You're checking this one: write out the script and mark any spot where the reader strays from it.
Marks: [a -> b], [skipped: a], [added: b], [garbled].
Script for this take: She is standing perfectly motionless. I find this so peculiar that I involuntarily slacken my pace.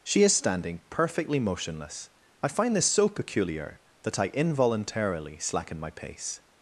She is standing perfectly motionless. I find this so peculiar that I involuntarily slacken my pace.